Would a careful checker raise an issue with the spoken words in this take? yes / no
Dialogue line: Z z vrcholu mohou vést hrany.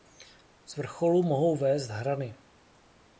yes